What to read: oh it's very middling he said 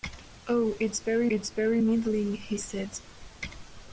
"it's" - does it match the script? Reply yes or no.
yes